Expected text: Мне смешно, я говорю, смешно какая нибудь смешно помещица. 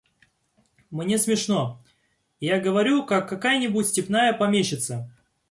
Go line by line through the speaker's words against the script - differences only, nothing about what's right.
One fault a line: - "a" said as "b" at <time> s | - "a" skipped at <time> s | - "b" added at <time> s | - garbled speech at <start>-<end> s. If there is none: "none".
- "смешно" said as "как" at 3.0 s
- "смешно" said as "степная" at 3.9 s